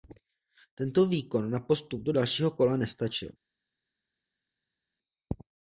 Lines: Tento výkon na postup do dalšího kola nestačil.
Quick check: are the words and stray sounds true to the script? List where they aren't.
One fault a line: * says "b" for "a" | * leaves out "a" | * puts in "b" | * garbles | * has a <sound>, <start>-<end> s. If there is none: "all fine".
all fine